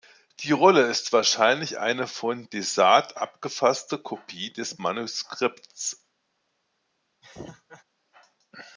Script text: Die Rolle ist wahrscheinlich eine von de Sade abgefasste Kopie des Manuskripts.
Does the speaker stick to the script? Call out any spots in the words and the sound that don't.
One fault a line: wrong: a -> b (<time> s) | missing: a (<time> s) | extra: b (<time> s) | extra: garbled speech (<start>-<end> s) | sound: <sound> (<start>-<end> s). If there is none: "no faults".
sound: laugh (7.2-7.8 s)